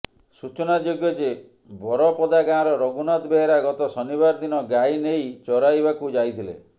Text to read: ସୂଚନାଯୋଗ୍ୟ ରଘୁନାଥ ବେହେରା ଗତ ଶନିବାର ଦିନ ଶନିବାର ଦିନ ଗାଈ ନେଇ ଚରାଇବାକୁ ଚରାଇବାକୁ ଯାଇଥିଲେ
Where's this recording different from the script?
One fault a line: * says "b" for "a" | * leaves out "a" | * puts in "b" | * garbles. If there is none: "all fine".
* puts in "ଯେ ବରପଦା ଗାଁର"
* leaves out "ଶନିବାର ଦିନ"
* leaves out "ଚରାଇବାକୁ"